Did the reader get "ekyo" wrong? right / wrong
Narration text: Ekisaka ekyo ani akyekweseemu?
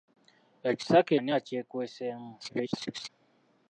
wrong